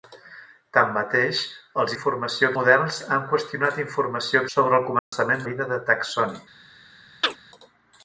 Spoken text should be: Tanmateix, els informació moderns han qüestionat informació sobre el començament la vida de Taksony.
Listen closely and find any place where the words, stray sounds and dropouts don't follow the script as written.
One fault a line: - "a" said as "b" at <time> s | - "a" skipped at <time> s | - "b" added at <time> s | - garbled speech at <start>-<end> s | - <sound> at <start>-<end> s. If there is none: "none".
- dropout at 5.0-5.1 s
- chirp at 7.2-7.4 s